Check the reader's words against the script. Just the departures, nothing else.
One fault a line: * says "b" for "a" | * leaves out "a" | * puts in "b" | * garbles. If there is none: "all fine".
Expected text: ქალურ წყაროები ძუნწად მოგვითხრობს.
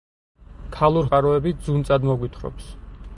all fine